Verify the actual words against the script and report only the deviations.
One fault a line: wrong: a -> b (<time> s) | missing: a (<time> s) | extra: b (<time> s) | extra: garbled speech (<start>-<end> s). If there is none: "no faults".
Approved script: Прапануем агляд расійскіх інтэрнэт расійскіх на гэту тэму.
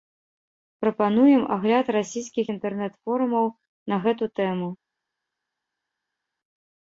wrong: расійскіх -> форумаў (3.1 s)